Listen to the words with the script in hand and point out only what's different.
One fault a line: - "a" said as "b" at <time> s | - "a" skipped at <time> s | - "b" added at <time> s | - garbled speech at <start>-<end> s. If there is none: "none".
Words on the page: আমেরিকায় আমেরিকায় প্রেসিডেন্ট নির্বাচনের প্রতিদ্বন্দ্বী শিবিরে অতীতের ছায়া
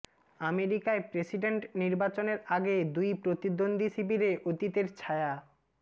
- "আমেরিকায়" skipped at 1.0 s
- "আগে দুই" added at 2.5 s